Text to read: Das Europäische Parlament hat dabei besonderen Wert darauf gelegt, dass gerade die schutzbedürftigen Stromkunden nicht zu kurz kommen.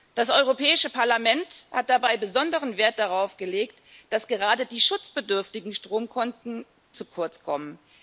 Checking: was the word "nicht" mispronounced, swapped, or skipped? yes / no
yes